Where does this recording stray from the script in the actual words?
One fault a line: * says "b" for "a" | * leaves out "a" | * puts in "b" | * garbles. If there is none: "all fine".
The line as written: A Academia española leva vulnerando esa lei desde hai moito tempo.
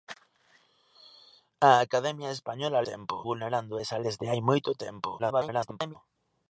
* says "tempo" for "leva"
* leaves out "lei"
* garbles